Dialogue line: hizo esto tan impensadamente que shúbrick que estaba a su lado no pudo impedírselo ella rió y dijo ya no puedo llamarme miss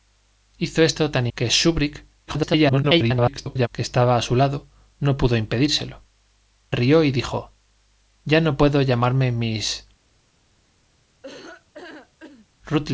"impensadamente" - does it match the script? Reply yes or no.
no